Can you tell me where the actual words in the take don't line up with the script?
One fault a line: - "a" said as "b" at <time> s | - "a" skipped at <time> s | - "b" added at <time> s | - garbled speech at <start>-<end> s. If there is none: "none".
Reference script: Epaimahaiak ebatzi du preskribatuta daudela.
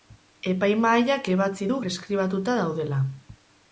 none